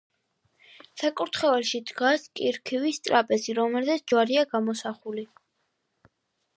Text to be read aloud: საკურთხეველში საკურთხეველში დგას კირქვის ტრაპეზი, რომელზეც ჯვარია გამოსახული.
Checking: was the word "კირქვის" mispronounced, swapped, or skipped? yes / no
no